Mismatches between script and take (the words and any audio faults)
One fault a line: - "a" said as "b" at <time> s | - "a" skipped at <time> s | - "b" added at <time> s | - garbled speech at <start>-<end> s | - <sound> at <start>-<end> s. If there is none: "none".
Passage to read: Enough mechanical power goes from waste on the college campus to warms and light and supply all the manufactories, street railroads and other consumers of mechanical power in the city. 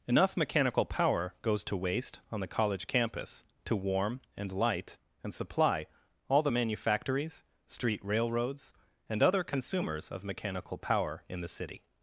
- "from" said as "to" at 1.6 s
- "warms" said as "warm" at 3.8 s